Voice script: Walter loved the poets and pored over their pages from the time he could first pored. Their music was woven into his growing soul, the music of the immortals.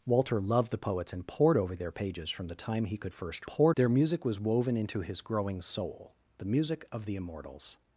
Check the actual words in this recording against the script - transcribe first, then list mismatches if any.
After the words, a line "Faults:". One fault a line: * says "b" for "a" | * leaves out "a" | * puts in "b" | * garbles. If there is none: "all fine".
Walter loved the poets and pored over their pages from the time he could first pored. Their music was woven into his growing soul, the music of the immortals.
Faults:
all fine